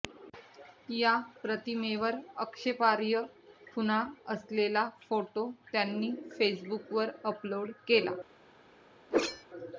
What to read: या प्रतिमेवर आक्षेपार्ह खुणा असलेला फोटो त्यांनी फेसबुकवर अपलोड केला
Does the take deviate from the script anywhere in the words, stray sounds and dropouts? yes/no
yes